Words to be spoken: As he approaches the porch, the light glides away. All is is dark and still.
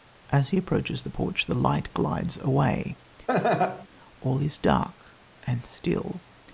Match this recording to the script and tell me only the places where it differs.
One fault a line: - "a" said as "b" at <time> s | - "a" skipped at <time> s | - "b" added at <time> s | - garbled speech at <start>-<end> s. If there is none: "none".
- "is" skipped at 4.6 s